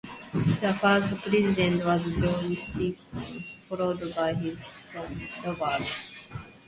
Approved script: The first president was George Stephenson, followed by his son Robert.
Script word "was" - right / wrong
right